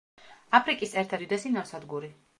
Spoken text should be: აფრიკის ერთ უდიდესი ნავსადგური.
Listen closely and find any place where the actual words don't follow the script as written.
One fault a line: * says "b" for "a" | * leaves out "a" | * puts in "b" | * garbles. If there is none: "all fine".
all fine